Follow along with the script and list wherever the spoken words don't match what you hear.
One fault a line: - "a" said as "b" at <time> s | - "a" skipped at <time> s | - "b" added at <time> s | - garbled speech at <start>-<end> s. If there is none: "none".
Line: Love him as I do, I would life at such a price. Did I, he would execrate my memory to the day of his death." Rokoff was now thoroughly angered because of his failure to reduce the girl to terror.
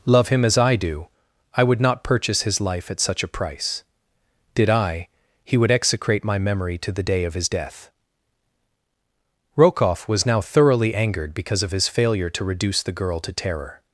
- "not purchase his" added at 1.8 s